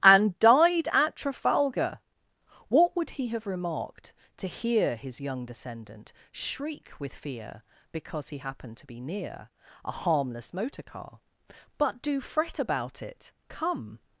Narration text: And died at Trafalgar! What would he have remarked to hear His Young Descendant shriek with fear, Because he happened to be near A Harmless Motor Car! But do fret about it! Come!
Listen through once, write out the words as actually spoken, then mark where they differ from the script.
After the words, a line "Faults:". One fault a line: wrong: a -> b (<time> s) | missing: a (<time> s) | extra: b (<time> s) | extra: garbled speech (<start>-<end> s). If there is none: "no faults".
And died at Trafalgar! What would he have remarked to hear His Young Descendant shriek with fear, Because he happened to be near A Harmless Motor Car! But do fret about it! Come!
Faults:
no faults